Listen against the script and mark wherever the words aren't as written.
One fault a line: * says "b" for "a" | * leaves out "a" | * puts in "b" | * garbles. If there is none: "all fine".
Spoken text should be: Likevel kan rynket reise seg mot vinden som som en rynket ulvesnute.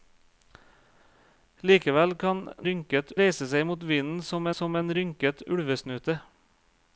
all fine